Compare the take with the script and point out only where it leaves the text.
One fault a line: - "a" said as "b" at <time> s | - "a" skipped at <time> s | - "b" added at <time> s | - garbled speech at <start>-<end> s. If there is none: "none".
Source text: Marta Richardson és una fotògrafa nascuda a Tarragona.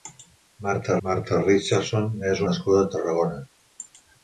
- "marta" added at 1.1 s
- "una fotògrafa" skipped at 2.4 s